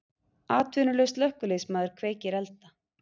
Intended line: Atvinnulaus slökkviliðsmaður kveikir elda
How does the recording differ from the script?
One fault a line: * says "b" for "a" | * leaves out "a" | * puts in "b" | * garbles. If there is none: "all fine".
all fine